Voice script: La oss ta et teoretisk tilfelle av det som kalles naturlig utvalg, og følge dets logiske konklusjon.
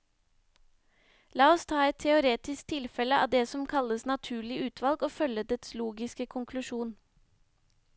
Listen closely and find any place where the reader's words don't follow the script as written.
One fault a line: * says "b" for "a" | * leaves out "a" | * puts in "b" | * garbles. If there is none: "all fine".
all fine